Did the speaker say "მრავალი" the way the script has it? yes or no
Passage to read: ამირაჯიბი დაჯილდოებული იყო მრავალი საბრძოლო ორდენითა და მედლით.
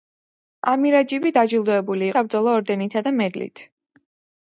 no